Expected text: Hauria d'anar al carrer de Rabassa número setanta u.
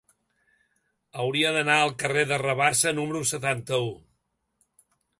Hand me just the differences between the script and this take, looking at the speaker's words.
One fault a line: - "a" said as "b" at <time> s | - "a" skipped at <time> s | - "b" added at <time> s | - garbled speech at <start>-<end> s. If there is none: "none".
none